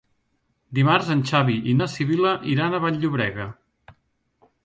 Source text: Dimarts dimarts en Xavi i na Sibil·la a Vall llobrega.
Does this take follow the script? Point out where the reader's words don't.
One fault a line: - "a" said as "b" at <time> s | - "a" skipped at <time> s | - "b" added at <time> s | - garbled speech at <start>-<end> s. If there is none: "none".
- "dimarts" skipped at 1.1 s
- "iran" added at 2.5 s